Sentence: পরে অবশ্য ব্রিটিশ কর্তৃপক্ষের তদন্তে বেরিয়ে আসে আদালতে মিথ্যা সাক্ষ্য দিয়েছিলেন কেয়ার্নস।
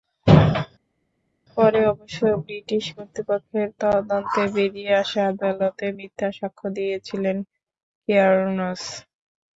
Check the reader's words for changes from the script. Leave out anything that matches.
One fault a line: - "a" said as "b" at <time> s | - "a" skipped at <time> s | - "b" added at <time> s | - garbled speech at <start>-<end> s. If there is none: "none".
none